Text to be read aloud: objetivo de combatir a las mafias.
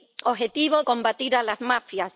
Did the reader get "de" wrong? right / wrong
wrong